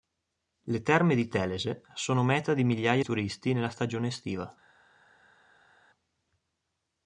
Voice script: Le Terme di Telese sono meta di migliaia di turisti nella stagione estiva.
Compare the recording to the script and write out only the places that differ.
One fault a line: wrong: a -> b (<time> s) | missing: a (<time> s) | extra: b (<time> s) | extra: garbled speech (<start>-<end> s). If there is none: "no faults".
missing: di (3.0 s)